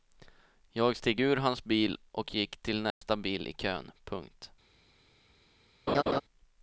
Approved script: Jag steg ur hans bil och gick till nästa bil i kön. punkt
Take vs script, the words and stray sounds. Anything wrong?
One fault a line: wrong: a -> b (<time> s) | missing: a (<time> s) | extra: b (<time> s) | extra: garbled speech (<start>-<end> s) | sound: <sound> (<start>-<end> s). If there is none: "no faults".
sound: dropout (2.9-3.0 s)
sound: laugh (5.9-6.2 s)